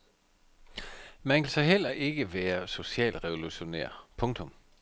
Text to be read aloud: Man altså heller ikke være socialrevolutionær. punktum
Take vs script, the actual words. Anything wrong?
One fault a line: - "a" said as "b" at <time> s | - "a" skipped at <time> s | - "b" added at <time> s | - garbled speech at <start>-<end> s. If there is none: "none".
none